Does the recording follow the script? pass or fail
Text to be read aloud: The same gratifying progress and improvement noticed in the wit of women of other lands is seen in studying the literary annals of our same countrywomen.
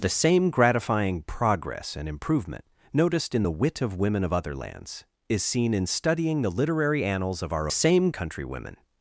pass